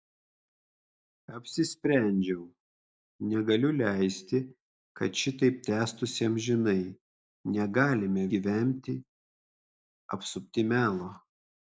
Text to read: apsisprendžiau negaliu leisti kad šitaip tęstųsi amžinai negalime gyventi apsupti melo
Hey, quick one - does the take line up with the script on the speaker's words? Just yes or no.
yes